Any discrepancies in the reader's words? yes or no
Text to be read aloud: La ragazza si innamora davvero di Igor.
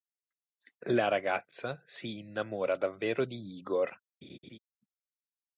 no